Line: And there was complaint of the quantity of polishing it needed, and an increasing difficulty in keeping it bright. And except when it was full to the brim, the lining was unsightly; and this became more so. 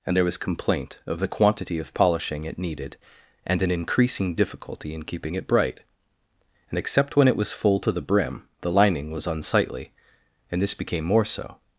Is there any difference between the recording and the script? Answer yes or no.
no